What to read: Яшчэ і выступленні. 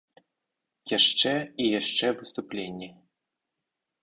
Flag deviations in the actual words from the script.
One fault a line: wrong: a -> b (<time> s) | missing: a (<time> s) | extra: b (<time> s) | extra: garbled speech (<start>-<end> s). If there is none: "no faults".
extra: яшчэ (1.8 s)